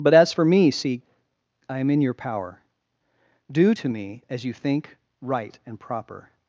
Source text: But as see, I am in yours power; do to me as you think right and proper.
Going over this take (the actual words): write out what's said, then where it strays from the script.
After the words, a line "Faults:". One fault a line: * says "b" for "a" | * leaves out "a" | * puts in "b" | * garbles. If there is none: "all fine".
But as for me, see, I am in your power; do to me as you think right and proper.
Faults:
* puts in "for me"
* says "your" for "yours"